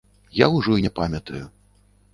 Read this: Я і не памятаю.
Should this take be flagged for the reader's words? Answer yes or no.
yes